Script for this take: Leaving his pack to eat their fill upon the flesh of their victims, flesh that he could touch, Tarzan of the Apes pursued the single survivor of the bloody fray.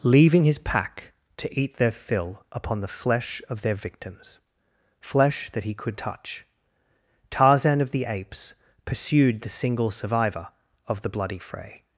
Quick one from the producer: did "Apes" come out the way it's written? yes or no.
yes